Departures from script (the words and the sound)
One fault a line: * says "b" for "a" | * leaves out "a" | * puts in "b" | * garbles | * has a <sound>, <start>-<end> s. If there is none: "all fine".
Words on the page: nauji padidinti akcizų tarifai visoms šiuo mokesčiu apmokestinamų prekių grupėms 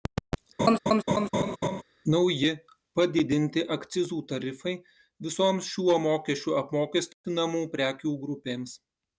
* has a laugh, 0.6-1.8 s